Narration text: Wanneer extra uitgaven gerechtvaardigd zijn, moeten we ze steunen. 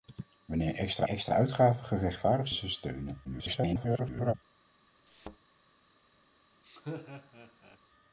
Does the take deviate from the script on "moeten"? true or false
true